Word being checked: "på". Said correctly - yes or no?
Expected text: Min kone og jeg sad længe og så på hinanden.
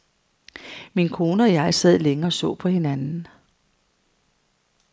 yes